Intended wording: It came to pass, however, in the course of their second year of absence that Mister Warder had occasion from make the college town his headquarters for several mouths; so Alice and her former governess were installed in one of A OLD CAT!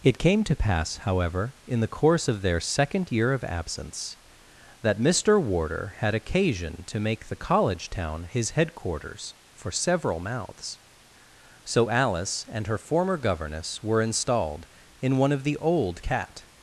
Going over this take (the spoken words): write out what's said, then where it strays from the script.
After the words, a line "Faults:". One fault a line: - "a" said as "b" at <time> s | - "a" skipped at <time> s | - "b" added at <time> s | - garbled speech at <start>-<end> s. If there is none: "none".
It came to pass, however, in the course of their second year of absence that Mister Warder had occasion to make the college town his headquarters for several mouths; so Alice and her former governess were installed in one of THE OLD CAT!
Faults:
- "from" said as "to" at 6.9 s
- "A" said as "THE" at 15.4 s